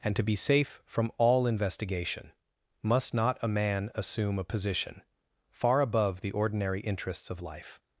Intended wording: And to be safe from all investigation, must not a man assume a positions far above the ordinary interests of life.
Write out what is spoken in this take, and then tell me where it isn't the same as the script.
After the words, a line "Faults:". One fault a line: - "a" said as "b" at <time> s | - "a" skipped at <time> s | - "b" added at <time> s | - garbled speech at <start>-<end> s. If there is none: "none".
And to be safe from all investigation, must not a man assume a position far above the ordinary interests of life.
Faults:
- "positions" said as "position" at 4.4 s